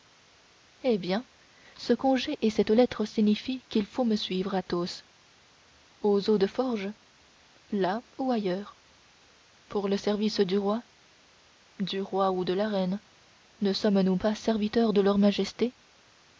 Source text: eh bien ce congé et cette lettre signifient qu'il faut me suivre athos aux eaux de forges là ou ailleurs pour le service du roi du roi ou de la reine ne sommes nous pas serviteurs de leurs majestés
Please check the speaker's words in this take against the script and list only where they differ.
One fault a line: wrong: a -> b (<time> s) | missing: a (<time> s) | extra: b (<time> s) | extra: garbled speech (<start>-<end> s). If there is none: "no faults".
no faults